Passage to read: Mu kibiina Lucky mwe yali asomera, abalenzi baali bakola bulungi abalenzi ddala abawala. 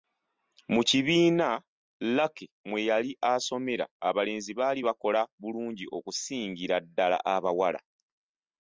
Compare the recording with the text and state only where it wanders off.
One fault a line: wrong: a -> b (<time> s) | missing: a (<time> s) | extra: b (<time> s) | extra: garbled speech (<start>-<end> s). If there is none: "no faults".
wrong: abalenzi -> okusingira (6.0 s)